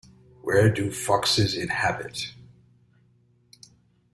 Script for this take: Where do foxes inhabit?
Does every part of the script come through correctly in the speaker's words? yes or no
yes